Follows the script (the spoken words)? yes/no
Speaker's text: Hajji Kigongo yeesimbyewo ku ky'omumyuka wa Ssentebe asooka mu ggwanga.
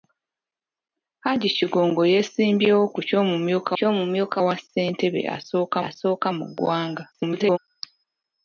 no